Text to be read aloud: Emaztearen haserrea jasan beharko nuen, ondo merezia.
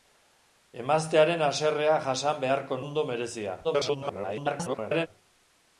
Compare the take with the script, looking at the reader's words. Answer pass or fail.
fail